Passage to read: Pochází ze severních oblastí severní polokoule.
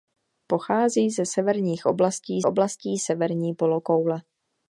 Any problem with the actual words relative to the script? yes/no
yes